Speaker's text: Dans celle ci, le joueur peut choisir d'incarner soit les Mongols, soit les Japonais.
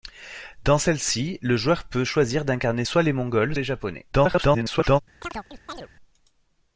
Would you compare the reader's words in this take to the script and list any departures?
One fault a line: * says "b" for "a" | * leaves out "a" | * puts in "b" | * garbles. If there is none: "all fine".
* leaves out "soit"
* garbles